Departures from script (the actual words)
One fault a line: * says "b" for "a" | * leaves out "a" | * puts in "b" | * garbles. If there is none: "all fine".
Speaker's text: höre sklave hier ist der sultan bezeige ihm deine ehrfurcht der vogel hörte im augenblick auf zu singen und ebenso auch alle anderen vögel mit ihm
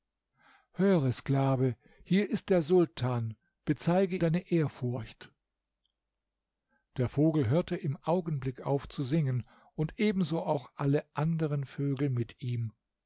* leaves out "ihm"